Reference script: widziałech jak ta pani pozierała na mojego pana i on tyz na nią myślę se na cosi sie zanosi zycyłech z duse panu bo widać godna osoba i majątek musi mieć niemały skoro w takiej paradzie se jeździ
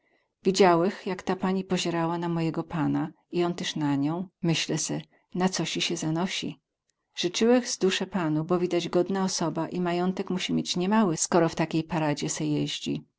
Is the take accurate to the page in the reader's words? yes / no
yes